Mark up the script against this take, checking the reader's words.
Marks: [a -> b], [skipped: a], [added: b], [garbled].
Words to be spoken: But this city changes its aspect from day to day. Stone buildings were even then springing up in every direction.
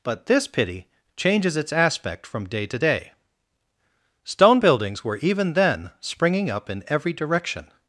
But this [city -> pity] changes its aspect from day to day. Stone buildings were even then springing up in every direction.